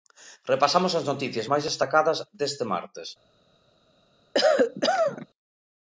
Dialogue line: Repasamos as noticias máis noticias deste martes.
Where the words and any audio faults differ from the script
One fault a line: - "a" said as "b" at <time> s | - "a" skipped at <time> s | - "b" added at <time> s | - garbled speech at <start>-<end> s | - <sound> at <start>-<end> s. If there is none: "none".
- "noticias" said as "destacadas" at 1.7 s
- cough at 4.3-5.3 s